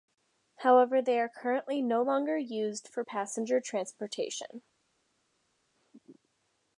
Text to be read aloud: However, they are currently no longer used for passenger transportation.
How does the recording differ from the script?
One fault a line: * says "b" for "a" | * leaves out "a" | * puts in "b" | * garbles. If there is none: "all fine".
all fine